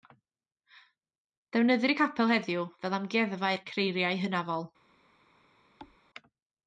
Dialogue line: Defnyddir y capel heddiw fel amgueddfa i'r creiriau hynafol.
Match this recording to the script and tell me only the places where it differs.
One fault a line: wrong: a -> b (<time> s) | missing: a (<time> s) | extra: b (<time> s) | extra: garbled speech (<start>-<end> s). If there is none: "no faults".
no faults